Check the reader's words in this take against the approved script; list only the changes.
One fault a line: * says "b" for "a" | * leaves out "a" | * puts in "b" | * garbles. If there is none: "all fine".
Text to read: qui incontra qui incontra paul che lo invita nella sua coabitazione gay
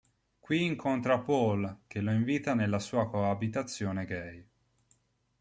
* leaves out "qui incontra"